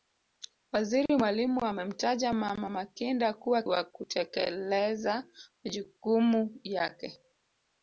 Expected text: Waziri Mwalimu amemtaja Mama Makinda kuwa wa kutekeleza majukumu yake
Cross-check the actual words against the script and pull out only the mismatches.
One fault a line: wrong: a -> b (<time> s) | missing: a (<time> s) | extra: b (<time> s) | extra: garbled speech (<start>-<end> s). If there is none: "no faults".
no faults